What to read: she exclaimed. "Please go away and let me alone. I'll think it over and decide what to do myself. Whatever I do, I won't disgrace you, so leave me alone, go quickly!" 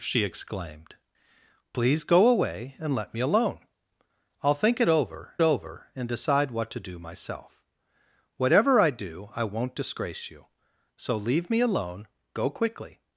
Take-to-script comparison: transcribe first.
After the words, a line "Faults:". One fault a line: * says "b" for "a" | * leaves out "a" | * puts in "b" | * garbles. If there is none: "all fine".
she exclaimed. "Please go away and let me alone. I'll think it over over and decide what to do myself. Whatever I do, I won't disgrace you, so leave me alone, go quickly!"
Faults:
* puts in "over"